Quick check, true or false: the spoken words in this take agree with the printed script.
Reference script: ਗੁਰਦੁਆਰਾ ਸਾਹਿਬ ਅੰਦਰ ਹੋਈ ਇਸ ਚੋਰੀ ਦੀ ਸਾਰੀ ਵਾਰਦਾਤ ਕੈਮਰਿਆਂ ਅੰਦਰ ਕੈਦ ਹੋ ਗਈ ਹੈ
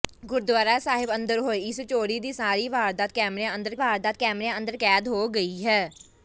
false